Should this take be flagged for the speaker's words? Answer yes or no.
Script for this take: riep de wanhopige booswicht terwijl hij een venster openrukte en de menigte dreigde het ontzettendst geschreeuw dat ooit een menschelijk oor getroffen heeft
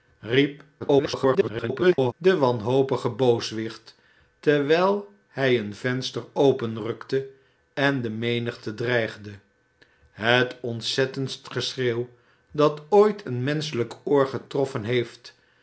yes